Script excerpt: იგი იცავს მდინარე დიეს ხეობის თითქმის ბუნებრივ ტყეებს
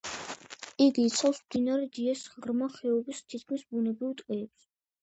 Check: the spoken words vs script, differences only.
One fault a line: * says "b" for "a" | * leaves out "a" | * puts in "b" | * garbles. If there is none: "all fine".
* puts in "ღრმა"